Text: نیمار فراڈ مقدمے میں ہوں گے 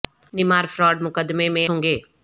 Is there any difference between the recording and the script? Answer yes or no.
no